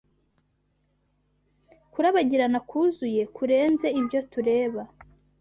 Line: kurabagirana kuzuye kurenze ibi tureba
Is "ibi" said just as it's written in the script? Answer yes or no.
no